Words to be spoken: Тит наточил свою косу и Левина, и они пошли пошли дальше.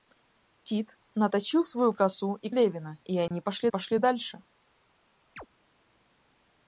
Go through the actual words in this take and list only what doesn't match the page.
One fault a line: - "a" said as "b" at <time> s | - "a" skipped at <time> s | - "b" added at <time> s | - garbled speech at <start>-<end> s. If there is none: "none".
none